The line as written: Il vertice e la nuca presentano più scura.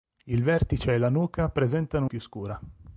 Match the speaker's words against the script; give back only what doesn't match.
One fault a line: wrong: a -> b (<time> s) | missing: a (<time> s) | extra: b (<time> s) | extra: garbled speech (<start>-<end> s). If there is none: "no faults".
no faults